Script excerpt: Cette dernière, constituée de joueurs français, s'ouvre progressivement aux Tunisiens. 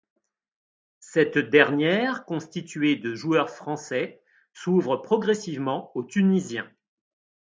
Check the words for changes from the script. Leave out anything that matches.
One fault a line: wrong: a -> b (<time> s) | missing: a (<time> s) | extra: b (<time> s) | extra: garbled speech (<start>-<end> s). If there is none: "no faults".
no faults